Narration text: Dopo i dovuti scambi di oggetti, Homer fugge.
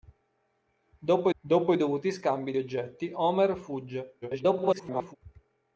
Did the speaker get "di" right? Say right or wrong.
wrong